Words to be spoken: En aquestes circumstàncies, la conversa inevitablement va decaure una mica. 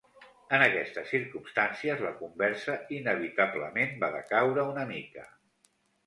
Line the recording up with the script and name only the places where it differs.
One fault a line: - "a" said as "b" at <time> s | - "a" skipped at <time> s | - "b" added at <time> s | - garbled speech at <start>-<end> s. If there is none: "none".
none